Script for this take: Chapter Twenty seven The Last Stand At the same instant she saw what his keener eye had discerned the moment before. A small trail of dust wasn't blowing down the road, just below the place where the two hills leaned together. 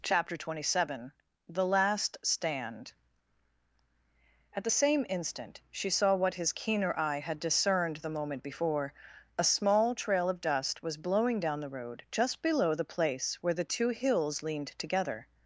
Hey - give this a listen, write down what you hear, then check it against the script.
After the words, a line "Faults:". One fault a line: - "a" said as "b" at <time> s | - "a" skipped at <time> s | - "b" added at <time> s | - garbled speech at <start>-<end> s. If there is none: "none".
Chapter Twenty seven The Last Stand At the same instant she saw what his keener eye had discerned the moment before. A small trail of dust was blowing down the road, just below the place where the two hills leaned together.
Faults:
- "wasn't" said as "was" at 10.8 s